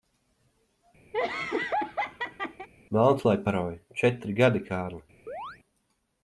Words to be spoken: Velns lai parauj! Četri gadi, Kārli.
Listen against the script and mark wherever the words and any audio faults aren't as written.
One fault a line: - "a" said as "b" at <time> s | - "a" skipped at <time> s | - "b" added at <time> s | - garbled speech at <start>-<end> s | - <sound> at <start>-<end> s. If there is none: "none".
- laugh at 1.1-2.7 s
- chirp at 5.3-5.6 s